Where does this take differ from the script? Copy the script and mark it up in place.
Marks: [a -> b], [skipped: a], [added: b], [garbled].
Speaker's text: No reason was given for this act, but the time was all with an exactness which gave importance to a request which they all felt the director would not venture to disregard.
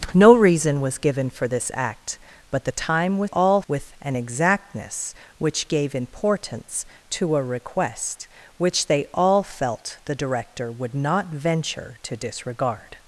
No reason was given for this act, but the time was all with an exactness which gave importance to a request which they all felt the director would not venture to disregard.